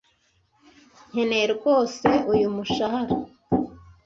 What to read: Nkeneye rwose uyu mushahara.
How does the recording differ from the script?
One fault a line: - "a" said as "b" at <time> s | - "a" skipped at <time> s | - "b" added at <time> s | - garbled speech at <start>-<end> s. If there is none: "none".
none